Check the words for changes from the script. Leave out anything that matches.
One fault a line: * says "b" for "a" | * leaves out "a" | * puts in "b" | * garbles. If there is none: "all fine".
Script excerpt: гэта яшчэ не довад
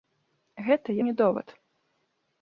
* leaves out "яшчэ"